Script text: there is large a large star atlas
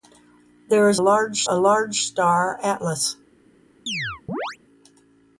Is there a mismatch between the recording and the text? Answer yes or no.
no